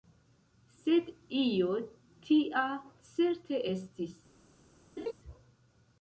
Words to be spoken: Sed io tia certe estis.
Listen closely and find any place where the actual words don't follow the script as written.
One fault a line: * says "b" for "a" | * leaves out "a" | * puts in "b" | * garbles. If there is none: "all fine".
all fine